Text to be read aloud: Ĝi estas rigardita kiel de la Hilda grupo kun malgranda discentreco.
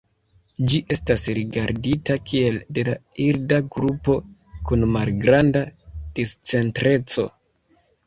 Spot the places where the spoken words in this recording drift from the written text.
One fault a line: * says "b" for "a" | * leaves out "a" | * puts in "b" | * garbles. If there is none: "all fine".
all fine